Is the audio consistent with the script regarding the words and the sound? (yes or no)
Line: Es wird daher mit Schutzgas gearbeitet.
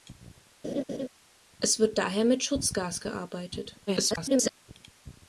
no